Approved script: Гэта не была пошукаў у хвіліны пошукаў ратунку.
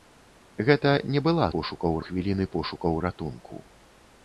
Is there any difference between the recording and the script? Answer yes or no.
no